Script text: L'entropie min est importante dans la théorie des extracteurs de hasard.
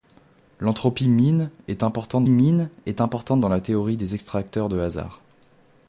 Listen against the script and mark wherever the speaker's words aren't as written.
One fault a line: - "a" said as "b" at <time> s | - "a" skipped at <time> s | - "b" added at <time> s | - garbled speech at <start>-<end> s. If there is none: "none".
- "min est importante" added at 2.3 s